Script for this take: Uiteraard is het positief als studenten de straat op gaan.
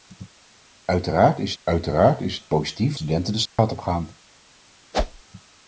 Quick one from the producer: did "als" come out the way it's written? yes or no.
no